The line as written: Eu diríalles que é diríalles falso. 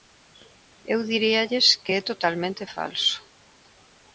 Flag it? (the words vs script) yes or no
yes